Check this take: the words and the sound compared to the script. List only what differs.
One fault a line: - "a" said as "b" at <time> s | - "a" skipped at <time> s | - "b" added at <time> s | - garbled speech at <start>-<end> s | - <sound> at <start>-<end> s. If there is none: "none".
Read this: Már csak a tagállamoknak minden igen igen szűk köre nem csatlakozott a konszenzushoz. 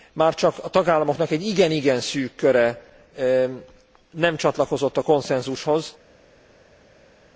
- "minden" said as "egy" at 1.3 s